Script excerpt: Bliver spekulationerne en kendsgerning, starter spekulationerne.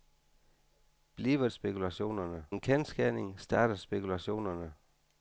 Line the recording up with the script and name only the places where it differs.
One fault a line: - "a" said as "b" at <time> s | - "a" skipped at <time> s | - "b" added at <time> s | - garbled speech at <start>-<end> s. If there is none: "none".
none